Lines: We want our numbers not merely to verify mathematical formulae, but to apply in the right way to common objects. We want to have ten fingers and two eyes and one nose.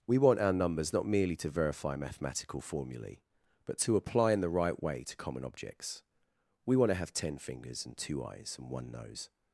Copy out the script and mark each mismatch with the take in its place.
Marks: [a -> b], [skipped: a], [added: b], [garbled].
We want our numbers not merely to verify mathematical formulae, but to apply in the right way to common objects. We want to have ten fingers and two eyes and one nose.